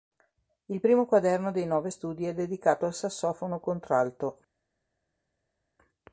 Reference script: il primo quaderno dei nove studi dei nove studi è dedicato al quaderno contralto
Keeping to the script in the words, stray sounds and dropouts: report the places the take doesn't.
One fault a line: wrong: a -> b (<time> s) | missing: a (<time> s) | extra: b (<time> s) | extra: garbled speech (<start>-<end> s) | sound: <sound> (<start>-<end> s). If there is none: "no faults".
missing: dei nove studi (2.3 s)
wrong: quaderno -> sassofono (2.9 s)